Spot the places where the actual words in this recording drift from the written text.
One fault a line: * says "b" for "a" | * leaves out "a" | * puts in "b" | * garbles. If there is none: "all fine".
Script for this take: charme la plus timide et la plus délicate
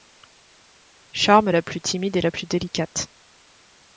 all fine